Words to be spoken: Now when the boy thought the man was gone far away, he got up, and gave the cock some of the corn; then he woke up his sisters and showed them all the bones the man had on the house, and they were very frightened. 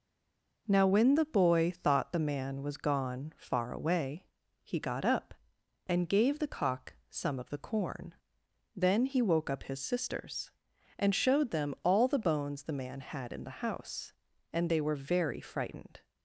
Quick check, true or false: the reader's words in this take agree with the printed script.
false